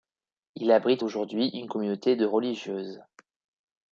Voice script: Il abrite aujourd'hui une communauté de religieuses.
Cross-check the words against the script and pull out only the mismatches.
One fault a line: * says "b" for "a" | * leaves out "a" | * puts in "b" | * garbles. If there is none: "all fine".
all fine